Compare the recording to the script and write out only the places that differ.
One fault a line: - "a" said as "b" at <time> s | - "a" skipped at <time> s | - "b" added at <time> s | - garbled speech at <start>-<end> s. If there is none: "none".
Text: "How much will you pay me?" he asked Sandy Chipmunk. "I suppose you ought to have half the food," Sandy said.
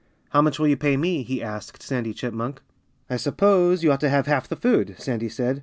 none